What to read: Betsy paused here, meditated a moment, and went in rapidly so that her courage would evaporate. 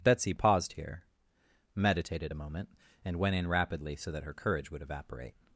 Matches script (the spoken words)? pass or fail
pass